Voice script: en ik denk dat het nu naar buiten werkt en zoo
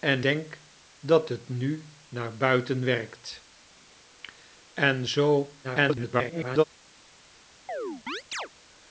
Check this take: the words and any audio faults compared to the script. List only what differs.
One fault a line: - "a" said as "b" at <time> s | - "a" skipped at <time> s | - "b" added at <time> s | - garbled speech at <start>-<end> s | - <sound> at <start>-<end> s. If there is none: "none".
- "ik" skipped at 0.2 s
- garbled speech at 5.6-6.6 s
- chirp at 7.7-8.5 s